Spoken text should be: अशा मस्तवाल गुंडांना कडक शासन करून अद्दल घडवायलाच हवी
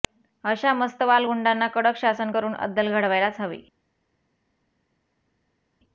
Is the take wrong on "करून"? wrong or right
right